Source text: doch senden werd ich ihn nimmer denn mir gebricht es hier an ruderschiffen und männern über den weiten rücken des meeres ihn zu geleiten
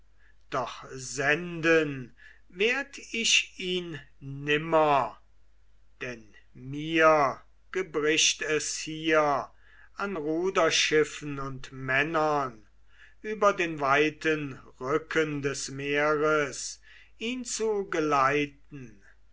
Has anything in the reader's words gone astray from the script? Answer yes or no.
no